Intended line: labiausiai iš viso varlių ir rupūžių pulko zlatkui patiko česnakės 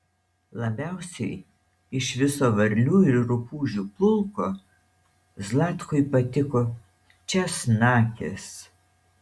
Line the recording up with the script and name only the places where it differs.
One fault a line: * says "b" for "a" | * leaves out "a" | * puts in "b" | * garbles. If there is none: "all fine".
all fine